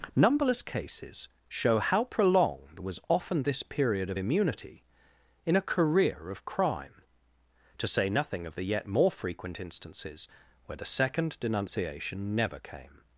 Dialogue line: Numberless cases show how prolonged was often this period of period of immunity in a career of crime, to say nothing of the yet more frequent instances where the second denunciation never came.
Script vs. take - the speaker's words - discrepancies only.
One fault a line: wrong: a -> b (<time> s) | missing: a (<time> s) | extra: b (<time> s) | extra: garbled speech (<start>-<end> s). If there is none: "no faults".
missing: period of (4.2 s)